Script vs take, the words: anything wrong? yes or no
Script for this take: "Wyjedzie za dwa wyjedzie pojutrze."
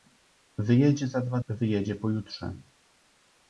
no